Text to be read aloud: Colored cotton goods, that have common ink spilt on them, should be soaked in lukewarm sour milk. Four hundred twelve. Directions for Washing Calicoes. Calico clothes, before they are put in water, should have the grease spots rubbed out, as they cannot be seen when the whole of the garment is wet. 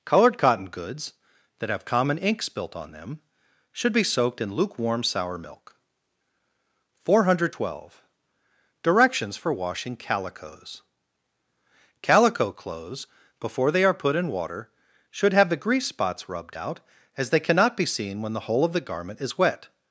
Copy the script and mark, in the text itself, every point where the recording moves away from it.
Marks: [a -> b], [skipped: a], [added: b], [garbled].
Colored cotton goods, that have common ink spilt on them, should be soaked in lukewarm sour milk. Four hundred twelve. Directions for Washing Calicoes. Calico clothes, before they are put in water, should have the grease spots rubbed out, as they cannot be seen when the whole of the garment is wet.